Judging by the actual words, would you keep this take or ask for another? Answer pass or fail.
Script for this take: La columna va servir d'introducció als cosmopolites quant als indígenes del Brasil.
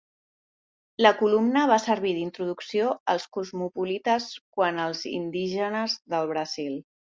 pass